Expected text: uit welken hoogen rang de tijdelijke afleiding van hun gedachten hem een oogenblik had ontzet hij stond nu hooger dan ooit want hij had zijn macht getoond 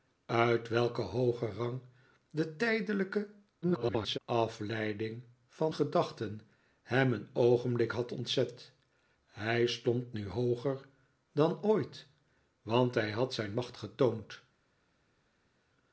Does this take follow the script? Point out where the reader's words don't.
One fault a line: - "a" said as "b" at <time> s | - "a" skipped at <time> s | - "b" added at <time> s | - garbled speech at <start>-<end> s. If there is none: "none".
- garbled speech at 3.6-4.2 s
- "hun" skipped at 5.7 s